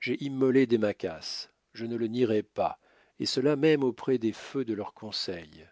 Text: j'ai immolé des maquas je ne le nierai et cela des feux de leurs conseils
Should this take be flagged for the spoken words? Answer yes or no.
yes